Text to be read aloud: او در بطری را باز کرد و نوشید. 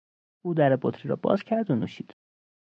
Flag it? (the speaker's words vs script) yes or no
no